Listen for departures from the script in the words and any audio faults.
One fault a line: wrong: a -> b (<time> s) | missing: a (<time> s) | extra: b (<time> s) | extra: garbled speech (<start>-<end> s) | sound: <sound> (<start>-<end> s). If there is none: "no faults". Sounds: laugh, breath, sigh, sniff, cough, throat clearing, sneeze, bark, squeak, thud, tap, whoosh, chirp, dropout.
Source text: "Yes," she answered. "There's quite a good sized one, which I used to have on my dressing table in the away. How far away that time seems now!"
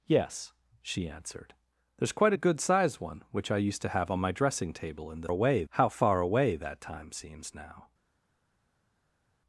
no faults